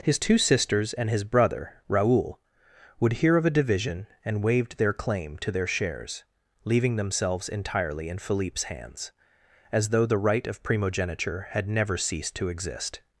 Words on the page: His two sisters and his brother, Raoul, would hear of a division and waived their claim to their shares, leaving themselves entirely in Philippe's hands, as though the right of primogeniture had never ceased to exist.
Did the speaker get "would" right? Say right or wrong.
right